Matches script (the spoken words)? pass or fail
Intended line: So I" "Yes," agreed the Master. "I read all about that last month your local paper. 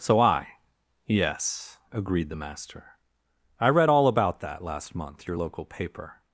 pass